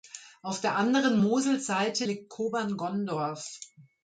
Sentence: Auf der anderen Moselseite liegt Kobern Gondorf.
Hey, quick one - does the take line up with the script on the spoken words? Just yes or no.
yes